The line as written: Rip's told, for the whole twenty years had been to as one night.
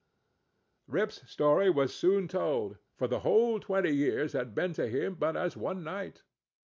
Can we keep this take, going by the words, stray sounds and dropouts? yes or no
no